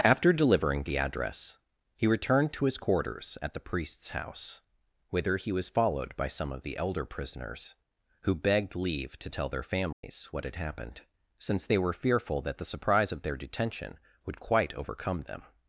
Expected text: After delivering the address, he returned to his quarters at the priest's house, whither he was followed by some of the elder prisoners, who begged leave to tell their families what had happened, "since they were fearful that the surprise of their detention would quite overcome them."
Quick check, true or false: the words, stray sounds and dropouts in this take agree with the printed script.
false